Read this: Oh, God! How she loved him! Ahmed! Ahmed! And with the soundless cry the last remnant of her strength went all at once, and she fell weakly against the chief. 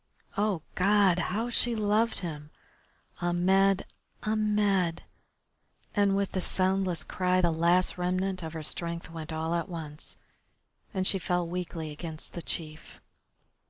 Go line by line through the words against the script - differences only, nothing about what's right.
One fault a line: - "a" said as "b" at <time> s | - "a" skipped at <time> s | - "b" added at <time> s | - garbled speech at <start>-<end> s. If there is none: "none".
none